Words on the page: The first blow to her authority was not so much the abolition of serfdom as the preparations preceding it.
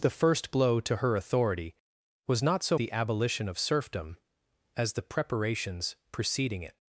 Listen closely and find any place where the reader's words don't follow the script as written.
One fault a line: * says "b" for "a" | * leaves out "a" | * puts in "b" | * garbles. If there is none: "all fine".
* leaves out "much"